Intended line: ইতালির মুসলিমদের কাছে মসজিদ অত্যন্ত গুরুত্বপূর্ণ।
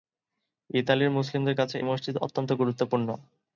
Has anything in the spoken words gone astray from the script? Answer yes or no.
no